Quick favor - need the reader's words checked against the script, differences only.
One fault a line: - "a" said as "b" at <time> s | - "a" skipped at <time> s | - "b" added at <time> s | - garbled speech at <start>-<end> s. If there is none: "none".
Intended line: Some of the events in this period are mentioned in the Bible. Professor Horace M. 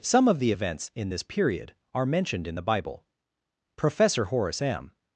none